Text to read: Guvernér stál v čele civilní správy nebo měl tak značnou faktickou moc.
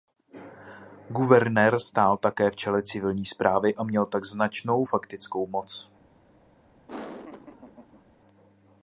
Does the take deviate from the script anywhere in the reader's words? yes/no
yes